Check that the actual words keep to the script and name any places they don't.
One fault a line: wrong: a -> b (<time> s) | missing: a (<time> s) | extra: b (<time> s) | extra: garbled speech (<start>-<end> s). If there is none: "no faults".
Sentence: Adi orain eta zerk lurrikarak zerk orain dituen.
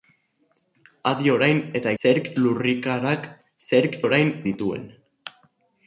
no faults